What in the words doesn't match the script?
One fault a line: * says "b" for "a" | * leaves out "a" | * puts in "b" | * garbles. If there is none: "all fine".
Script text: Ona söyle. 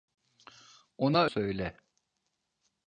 all fine